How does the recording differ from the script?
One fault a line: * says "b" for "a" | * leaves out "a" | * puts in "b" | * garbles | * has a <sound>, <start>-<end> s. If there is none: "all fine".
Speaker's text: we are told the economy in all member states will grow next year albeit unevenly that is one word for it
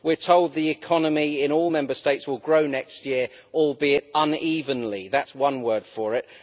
all fine